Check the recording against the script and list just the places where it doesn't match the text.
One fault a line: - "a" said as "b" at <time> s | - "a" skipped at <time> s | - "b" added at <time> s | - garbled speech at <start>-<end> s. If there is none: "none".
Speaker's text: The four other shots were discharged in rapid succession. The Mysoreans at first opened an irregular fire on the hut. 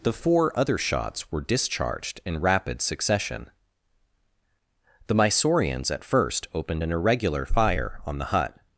none